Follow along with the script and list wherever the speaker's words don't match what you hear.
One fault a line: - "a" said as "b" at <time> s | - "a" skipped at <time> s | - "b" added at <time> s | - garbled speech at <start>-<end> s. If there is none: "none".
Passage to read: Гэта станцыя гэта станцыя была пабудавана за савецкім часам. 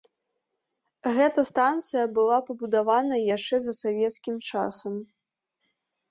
- "гэта станцыя" skipped at 2.0 s
- "яшчэ" added at 3.4 s